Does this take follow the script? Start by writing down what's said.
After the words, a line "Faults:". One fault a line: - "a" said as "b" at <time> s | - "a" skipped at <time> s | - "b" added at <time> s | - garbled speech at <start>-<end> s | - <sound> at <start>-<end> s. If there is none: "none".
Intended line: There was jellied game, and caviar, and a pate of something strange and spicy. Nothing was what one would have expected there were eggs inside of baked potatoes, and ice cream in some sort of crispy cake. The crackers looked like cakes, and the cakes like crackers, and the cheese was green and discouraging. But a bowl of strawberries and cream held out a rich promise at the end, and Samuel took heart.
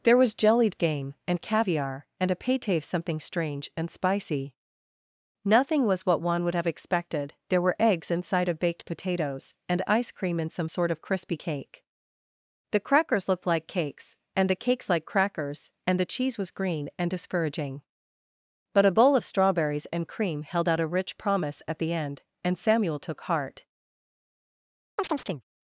There was jellied game, and caviar, and a pate of something strange and spicy. Nothing was what one would have expected there were eggs inside of baked potatoes, and ice cream in some sort of crispy cake. The crackers looked like cakes, and the cakes like crackers, and the cheese was green and discouraging. But a bowl of strawberries and cream held out a rich promise at the end, and Samuel took heart.
Faults:
- chirp at 25.0-25.4 s